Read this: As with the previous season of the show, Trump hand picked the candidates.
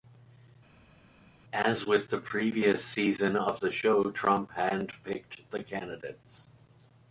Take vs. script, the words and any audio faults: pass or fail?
pass